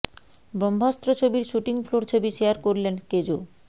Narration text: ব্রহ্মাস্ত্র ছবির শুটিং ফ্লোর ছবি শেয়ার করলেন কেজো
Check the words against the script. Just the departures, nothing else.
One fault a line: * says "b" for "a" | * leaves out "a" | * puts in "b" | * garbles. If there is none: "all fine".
all fine